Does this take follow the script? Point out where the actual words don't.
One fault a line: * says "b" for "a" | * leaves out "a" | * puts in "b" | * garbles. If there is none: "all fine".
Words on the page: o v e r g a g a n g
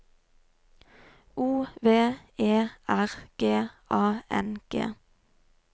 * leaves out "g a"